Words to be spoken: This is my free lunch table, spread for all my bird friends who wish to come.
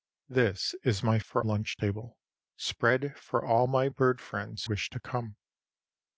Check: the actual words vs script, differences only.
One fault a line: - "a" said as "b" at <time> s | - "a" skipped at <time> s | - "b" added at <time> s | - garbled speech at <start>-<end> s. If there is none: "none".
- "free" said as "for" at 1.2 s
- "who" skipped at 4.6 s